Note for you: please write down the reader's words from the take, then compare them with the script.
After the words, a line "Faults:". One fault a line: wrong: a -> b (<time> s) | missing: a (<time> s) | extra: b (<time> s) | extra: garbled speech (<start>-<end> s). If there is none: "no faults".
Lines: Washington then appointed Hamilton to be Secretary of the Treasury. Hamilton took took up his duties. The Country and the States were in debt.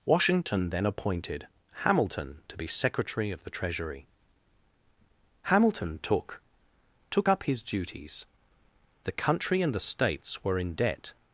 Washington then appointed Hamilton to be Secretary of the Treasury. Hamilton took took up his duties. The Country and the States were in debt.
Faults:
no faults